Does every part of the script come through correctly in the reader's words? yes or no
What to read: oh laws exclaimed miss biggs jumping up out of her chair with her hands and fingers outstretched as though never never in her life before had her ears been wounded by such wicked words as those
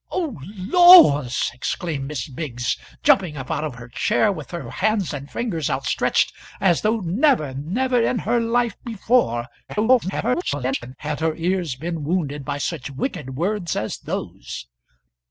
no